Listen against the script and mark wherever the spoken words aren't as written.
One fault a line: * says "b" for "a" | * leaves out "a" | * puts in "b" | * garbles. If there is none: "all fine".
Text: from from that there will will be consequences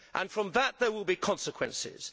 * leaves out "from"
* leaves out "will"